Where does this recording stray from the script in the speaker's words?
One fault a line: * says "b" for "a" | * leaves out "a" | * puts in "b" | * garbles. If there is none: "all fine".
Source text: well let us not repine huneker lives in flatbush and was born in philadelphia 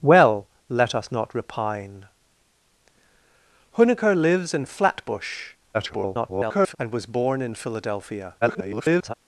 * garbles
* garbles